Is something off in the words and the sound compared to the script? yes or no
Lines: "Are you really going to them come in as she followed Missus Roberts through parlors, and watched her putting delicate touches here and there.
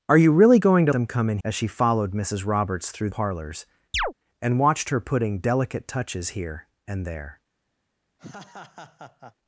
yes